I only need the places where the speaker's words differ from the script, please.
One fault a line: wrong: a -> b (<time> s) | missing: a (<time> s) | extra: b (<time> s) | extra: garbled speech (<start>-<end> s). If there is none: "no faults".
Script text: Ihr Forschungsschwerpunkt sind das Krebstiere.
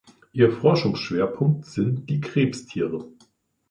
wrong: das -> die (2.1 s)